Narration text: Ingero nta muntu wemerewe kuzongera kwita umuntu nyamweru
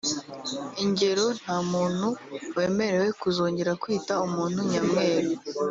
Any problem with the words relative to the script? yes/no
no